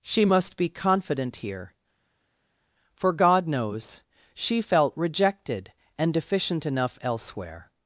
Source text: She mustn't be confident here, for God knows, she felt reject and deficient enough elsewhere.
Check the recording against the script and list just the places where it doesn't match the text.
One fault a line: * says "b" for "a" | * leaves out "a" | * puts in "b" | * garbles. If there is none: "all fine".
* says "must" for "mustn't"
* says "rejected" for "reject"